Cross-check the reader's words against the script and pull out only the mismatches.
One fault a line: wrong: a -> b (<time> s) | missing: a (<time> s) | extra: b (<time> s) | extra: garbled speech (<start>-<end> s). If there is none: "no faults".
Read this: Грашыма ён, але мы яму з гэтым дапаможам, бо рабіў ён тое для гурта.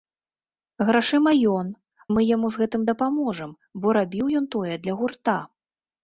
missing: але (1.7 s)